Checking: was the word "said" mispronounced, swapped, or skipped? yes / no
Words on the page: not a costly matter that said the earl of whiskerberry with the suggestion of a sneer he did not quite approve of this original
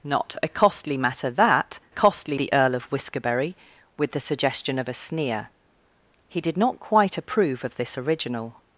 yes